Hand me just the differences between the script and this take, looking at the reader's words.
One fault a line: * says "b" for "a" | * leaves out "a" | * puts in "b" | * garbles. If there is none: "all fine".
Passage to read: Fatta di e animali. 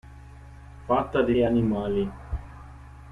all fine